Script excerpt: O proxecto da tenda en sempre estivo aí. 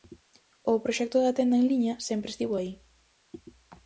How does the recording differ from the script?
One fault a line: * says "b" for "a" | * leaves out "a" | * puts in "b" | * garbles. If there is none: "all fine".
* puts in "liña"